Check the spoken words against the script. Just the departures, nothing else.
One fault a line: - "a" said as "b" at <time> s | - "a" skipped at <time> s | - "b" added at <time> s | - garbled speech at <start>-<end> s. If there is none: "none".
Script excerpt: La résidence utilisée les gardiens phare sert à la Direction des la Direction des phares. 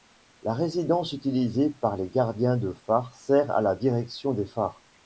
- "par" added at 1.7 s
- "de" added at 2.6 s
- "la Direction des" skipped at 4.5 s